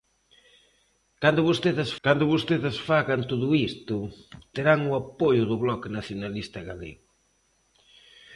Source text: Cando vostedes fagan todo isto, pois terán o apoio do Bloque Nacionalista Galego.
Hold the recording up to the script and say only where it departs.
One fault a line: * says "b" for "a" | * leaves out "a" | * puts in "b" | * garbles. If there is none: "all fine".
* puts in "cando vostedes"
* leaves out "pois"